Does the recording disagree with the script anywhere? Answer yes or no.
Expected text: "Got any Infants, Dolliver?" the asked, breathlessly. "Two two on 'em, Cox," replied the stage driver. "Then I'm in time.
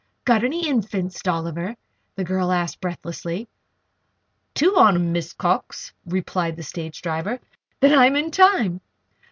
yes